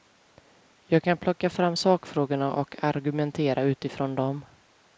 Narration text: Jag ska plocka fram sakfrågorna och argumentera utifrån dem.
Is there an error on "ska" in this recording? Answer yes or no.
yes